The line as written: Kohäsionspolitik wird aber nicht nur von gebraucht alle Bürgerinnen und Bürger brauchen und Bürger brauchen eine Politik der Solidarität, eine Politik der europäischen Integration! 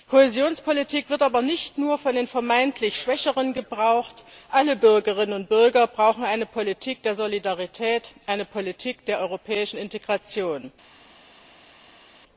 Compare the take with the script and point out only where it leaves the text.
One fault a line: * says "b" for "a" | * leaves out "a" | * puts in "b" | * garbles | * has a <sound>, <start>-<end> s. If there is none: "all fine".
* puts in "den vermeintlich Schwächeren"
* leaves out "und Bürger brauchen"